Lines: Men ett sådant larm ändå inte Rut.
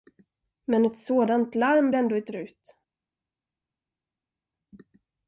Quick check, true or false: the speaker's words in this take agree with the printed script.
true